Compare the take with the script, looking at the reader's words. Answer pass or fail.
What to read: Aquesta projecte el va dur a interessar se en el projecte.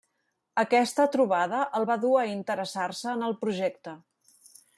fail